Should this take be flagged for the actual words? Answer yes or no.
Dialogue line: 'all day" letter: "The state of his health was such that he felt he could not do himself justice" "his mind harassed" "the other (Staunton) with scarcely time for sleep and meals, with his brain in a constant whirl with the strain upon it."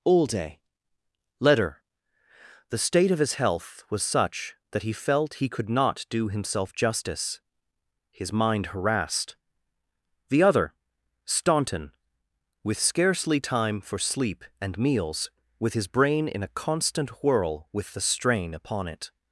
no